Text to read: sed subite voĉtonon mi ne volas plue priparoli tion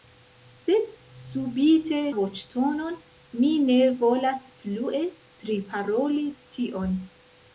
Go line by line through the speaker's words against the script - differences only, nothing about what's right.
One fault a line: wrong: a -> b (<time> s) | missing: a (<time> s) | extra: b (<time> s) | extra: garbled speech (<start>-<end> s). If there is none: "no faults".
no faults